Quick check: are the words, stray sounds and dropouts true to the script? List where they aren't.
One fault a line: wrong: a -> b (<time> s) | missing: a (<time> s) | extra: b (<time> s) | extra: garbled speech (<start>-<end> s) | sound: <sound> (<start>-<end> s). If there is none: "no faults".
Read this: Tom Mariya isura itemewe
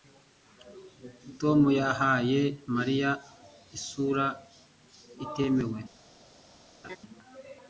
extra: yahaye (1.8 s)
sound: laugh (6.8-7.0 s)